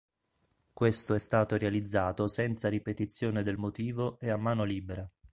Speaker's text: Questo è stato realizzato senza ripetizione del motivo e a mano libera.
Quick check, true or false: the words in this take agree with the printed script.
true